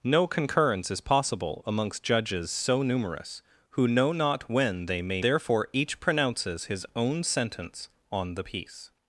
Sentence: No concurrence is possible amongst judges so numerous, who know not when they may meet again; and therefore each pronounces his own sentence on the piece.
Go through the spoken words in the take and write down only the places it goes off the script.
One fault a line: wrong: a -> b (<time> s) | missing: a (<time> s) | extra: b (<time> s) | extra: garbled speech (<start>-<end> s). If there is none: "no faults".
missing: meet again and (5.2 s)